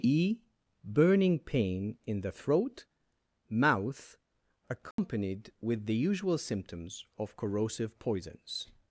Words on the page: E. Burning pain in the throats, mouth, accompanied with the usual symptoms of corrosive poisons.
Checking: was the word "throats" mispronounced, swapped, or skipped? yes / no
yes